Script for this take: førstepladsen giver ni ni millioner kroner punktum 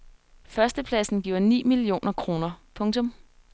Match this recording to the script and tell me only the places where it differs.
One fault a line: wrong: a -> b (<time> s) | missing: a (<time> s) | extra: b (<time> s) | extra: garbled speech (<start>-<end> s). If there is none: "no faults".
missing: ni (1.6 s)